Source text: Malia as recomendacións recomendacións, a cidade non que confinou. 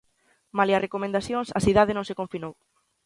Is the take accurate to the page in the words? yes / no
no